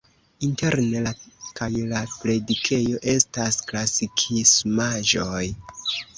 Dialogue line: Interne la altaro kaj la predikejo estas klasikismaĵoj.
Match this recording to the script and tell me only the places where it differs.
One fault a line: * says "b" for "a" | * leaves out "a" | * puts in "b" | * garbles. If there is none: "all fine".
* leaves out "altaro"